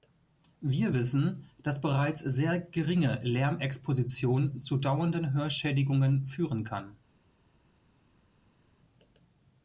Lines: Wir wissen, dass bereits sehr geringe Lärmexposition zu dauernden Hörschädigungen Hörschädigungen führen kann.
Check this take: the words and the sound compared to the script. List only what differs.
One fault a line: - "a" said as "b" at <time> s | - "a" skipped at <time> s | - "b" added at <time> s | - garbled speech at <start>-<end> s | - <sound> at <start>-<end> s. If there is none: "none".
- "Hörschädigungen" skipped at 6.3 s